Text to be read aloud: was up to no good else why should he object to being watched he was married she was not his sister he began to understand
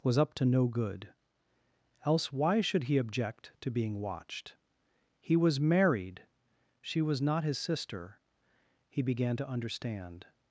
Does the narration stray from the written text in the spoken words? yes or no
no